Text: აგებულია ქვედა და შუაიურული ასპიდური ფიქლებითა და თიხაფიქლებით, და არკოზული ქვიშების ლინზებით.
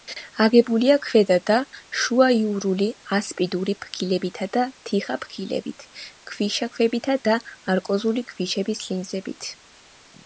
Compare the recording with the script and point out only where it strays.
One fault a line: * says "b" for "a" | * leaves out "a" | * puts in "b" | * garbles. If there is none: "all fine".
* puts in "ქვიშაქვებითა"